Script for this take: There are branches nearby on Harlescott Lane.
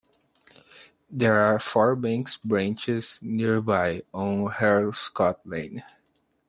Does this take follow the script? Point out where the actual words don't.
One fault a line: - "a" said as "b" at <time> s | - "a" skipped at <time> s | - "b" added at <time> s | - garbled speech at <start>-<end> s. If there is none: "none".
- "four bank" added at 1.6 s